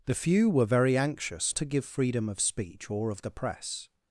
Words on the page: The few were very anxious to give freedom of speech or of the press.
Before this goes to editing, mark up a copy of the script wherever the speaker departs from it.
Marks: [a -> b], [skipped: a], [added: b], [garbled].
The few were very anxious to give freedom of speech or of the press.